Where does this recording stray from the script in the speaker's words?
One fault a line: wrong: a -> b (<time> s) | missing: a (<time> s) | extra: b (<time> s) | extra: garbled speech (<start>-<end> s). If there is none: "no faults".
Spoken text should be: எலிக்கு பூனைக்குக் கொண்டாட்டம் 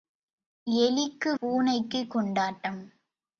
no faults